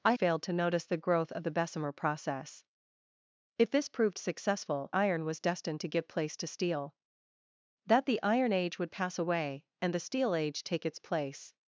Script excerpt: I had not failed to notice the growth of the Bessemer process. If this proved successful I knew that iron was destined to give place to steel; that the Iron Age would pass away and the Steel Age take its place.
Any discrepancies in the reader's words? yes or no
yes